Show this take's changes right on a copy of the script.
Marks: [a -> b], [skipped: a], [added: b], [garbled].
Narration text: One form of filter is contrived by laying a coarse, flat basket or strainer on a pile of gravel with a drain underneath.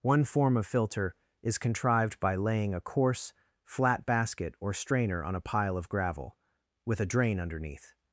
One form of filter is contrived by laying a coarse, flat basket or strainer on a pile of gravel with a drain underneath.